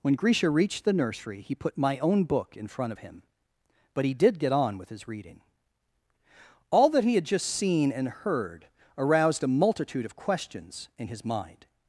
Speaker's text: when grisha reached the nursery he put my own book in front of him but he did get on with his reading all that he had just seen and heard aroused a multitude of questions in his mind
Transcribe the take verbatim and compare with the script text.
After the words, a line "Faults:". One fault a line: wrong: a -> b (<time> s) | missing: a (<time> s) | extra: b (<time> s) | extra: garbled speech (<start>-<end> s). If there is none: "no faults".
when grisha reached the nursery he put my own book in front of him but he did get on with his reading all that he had just seen and heard aroused a multitude of questions in his mind
Faults:
no faults